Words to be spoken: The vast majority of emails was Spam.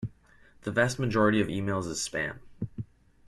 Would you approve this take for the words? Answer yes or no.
no